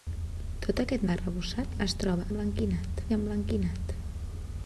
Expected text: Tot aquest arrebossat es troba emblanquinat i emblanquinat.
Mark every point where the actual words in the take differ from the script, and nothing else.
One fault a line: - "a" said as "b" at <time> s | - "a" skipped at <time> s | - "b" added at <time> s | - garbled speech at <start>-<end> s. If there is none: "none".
none